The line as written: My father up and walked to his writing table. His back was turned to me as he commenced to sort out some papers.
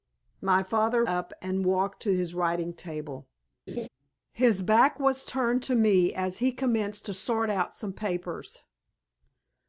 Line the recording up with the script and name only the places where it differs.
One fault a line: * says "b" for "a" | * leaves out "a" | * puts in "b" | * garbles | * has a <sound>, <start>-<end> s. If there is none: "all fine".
* has a laugh, 3.7-3.9 s